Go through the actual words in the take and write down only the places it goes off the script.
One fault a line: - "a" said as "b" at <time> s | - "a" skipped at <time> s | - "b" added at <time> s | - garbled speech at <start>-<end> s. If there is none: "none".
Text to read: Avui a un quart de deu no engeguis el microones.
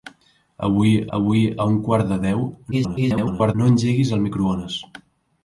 - "avui" added at 1.2 s
- garbled speech at 2.7-3.5 s